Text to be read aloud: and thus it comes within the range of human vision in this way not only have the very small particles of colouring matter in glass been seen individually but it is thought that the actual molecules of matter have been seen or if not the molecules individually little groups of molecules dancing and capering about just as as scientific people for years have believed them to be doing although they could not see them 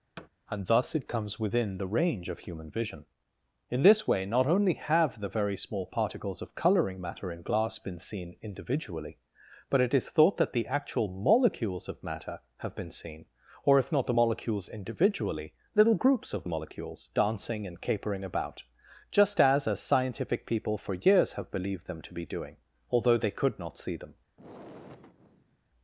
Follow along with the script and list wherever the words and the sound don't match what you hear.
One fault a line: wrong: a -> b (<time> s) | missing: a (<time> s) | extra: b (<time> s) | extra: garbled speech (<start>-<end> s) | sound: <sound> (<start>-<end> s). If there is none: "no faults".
sound: thud (0.2-0.3 s)
sound: sigh (24.4-25.7 s)